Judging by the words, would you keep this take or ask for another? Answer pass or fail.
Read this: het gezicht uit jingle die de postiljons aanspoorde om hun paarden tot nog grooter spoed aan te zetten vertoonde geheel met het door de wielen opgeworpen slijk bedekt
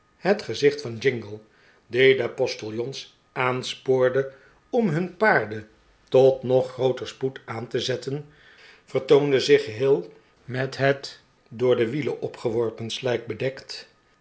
fail